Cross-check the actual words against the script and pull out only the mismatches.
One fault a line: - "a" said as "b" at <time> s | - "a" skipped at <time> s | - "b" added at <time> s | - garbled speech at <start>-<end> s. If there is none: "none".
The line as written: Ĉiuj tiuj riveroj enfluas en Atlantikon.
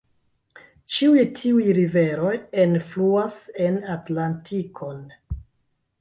none